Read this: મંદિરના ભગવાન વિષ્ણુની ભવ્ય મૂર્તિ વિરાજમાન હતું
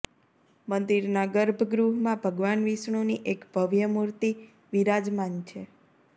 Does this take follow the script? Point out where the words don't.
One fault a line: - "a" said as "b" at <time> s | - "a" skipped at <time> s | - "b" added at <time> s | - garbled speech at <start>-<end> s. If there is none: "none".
- "ગર્ભગૃહમાં" added at 1.3 s
- "એક" added at 3.4 s
- "હતું" said as "છે" at 5.5 s